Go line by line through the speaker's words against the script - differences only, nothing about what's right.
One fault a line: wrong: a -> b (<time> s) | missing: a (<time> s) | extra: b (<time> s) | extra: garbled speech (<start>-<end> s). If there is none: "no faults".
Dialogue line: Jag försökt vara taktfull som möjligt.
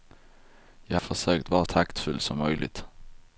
no faults